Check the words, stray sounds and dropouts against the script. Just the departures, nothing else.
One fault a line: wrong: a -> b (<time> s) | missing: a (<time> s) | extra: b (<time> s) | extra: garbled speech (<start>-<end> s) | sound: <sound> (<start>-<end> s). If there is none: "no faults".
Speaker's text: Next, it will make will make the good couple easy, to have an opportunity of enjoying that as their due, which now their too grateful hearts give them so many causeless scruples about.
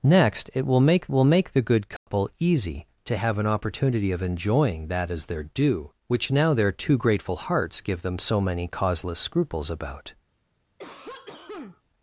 sound: dropout (2.0-2.1 s)
sound: cough (10.8-11.8 s)